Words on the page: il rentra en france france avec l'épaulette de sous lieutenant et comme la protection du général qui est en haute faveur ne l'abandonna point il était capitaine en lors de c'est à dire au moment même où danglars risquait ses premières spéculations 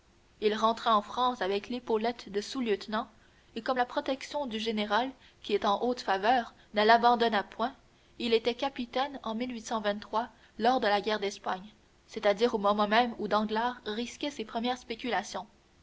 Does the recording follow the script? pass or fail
fail